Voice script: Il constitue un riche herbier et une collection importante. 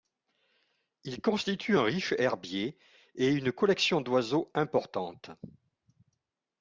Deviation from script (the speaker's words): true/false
true